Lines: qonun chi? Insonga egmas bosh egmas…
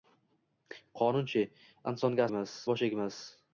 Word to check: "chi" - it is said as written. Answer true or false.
true